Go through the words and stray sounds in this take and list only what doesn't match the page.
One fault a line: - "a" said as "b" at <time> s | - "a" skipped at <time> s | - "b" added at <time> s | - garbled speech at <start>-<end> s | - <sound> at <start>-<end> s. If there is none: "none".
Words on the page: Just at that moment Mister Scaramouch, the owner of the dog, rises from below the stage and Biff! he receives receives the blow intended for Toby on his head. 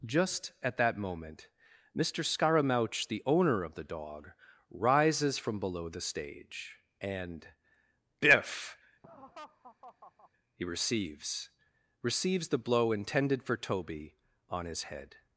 - laugh at 9.0-10.3 s